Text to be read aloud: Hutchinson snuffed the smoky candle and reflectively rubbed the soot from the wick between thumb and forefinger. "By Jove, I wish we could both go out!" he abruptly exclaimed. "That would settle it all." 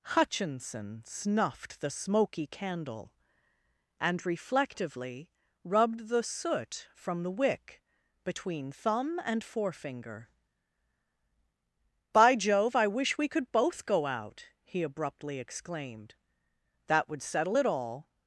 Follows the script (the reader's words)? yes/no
yes